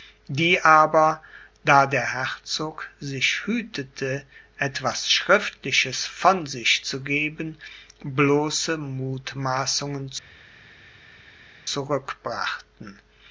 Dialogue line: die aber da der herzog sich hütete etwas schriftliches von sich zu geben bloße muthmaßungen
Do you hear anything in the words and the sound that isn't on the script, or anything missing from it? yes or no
no